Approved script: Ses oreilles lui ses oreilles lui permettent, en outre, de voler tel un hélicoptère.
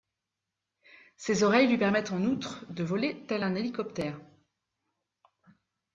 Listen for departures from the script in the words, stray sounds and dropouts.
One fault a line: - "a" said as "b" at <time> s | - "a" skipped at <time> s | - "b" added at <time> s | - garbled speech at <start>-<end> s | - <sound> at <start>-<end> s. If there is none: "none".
- "ses oreilles lui" skipped at 1.8 s